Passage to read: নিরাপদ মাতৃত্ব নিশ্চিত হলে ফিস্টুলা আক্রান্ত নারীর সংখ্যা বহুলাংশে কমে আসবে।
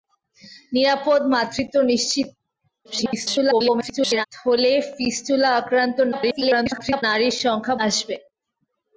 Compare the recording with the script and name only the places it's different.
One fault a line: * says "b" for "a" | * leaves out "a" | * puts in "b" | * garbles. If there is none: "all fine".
* garbles
* garbles
* leaves out "বহুলাংশে কমে"